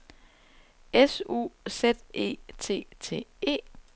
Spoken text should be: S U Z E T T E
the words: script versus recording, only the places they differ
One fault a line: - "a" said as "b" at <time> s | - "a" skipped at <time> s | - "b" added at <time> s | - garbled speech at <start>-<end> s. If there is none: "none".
none